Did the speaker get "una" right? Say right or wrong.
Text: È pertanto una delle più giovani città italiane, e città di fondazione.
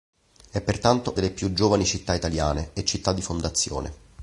wrong